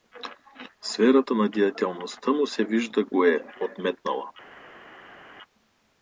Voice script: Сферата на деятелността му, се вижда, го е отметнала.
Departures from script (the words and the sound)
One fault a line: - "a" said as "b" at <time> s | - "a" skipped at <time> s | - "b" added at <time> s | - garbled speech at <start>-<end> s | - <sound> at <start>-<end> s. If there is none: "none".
none